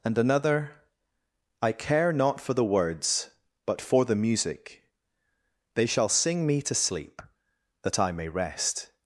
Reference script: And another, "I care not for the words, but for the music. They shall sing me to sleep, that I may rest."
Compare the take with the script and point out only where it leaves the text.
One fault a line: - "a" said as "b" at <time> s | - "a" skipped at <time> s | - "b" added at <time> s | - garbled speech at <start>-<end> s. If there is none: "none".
none